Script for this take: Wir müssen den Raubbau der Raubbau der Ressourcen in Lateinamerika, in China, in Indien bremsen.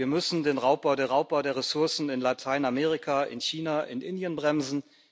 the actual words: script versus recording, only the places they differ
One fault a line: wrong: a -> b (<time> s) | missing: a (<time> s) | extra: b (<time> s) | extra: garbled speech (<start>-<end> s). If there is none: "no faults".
no faults